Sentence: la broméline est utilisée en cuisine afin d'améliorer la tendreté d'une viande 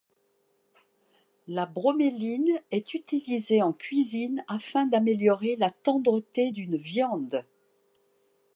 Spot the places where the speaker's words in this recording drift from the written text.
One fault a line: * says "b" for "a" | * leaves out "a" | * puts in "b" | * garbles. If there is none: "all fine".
all fine